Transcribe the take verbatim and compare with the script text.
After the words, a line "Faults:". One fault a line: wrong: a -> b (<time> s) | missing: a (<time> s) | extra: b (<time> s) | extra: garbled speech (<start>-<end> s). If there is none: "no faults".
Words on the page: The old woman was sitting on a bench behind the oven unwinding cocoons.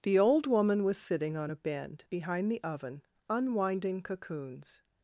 The old woman was sitting on a bend behind the oven unwinding cocoons.
Faults:
wrong: bench -> bend (1.5 s)